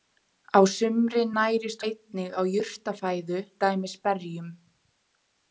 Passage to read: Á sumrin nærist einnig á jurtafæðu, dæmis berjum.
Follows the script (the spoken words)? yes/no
yes